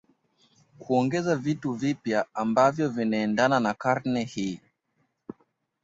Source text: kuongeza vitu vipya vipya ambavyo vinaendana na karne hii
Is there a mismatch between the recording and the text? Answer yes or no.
yes